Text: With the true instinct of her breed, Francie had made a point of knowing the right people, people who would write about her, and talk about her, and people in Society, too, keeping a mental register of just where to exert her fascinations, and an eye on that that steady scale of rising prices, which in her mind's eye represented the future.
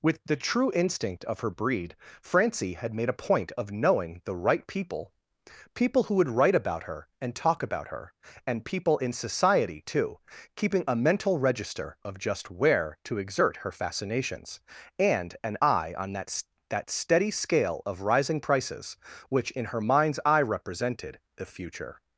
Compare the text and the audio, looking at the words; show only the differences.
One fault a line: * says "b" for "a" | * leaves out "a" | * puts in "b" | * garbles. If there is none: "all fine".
all fine